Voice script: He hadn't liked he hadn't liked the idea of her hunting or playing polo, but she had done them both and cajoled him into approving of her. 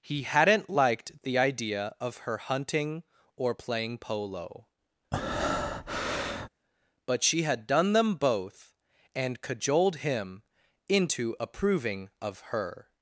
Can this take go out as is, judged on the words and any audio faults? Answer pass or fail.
fail